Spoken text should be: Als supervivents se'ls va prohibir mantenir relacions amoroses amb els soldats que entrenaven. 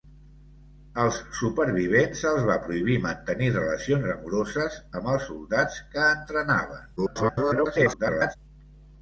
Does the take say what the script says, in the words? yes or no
no